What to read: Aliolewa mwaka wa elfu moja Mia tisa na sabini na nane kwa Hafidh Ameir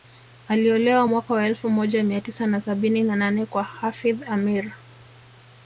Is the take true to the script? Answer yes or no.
yes